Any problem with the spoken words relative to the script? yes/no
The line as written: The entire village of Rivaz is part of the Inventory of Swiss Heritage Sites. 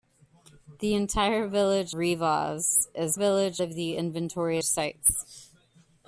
yes